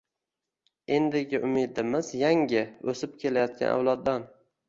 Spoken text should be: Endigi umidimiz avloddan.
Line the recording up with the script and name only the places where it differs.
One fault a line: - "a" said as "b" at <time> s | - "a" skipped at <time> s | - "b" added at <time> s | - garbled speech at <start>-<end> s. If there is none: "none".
- "yangi o‘sib kelayotgan" added at 2.2 s